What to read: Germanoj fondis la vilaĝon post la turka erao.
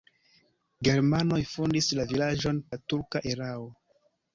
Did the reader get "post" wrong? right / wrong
wrong